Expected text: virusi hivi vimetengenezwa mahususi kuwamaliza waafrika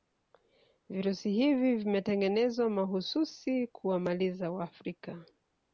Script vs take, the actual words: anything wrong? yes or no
no